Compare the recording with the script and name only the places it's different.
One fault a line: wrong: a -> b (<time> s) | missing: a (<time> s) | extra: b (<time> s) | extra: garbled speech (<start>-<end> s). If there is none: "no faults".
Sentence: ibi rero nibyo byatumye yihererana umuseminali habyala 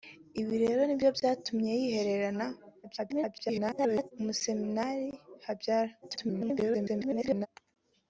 extra: garbled speech (2.8-4.1 s)
extra: garbled speech (6.0-7.5 s)